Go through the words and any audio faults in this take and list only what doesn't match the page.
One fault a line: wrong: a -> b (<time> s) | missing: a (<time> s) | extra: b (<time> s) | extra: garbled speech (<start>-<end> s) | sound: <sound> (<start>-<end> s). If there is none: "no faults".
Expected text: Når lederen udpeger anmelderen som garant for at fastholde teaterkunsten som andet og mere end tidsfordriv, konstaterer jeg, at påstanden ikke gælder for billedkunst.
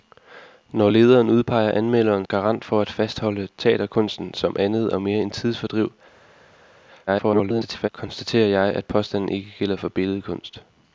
missing: som (2.2 s)
extra: garbled speech (7.1-7.9 s)